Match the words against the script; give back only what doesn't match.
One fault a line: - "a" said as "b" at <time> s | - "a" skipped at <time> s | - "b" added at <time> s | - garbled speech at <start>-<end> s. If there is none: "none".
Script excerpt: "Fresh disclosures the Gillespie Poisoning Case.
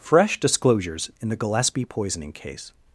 - "in" added at 1.2 s